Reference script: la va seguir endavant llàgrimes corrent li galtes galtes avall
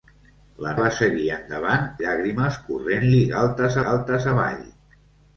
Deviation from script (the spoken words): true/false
false